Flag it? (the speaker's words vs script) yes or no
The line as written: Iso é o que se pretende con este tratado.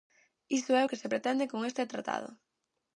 no